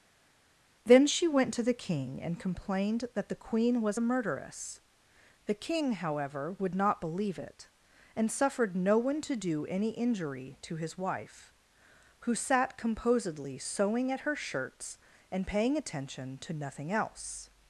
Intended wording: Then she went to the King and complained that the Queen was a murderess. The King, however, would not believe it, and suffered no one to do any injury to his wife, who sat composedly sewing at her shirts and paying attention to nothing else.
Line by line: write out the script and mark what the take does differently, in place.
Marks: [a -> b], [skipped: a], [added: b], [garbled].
Then she went to the King and complained that the Queen was a murderess. The King, however, would not believe it, and suffered no one to do any injury to his wife, who sat composedly sewing at her shirts and paying attention to nothing else.